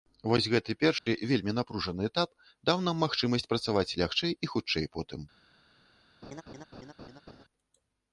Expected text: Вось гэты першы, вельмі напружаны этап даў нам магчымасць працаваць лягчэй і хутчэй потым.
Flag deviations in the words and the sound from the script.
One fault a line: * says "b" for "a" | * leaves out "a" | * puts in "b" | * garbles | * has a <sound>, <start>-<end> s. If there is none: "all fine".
* has a dropout, 1.0-1.1 s
* has a laugh, 6.2-7.4 s